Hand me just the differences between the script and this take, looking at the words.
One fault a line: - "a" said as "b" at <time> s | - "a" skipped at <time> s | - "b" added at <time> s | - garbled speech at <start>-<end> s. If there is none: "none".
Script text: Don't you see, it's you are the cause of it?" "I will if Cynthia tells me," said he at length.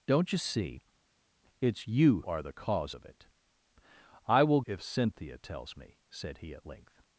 none